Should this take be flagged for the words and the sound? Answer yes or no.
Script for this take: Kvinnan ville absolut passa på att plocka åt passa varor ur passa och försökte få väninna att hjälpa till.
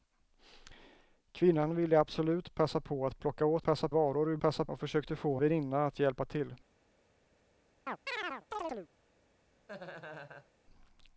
yes